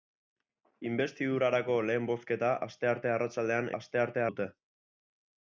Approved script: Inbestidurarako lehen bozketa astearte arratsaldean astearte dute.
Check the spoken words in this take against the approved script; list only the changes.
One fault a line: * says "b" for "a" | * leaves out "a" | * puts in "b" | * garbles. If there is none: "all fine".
all fine